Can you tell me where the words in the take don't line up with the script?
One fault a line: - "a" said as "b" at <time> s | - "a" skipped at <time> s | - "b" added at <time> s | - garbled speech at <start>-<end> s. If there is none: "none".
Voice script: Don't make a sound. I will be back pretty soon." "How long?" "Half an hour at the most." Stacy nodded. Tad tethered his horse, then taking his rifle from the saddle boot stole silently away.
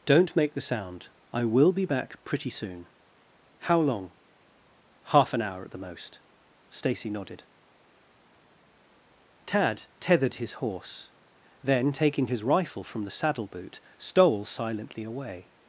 - "a" said as "the" at 0.5 s